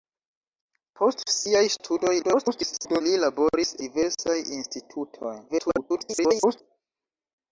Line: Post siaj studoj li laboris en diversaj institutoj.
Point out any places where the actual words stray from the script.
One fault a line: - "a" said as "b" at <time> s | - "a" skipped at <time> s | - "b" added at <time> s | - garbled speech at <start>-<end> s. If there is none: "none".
- garbled speech at 2.2-3.0 s
- "en" skipped at 3.8 s
- garbled speech at 5.5-6.6 s